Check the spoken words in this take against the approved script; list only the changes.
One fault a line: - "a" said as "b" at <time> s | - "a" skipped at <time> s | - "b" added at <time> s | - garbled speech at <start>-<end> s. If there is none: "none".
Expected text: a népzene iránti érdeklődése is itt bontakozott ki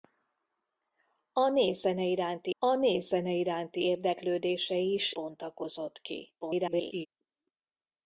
- "a népzene iránti" added at 2.6 s
- "itt" skipped at 5.1 s
- garbled speech at 6.4-7.1 s